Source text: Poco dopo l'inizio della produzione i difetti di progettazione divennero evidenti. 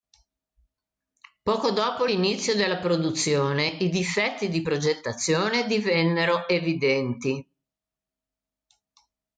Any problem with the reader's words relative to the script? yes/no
no